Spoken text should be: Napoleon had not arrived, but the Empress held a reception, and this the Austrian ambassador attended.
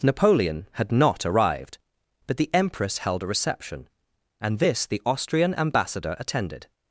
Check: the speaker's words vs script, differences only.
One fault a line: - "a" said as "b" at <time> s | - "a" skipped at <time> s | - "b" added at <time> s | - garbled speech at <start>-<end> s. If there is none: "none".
none